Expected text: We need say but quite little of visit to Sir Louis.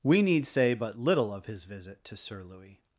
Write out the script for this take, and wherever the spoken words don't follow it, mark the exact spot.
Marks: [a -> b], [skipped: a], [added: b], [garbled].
We need say but [skipped: quite] little of [added: his] visit to Sir Louis.